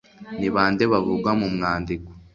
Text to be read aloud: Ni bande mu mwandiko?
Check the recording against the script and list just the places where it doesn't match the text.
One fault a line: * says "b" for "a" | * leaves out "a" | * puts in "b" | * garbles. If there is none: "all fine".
* puts in "bavugwa"